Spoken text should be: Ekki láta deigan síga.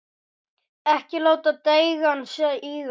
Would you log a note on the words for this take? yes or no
no